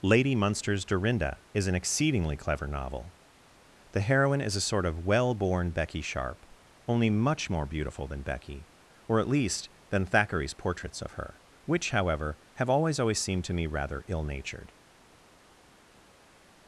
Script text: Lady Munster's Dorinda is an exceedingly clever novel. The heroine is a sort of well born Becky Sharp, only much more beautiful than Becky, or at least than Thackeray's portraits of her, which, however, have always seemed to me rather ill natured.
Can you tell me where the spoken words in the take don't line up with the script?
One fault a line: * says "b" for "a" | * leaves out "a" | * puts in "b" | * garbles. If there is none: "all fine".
* puts in "always"